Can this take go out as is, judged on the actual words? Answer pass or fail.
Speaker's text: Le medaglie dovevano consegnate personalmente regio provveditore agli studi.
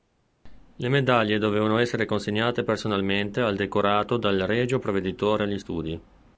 fail